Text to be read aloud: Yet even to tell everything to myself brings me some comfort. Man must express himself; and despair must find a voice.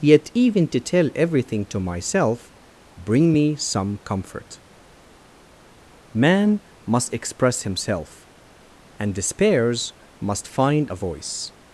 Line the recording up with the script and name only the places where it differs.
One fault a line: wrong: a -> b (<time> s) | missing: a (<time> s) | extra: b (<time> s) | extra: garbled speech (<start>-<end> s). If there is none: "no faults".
wrong: brings -> bring (3.0 s)
wrong: despair -> despairs (9.1 s)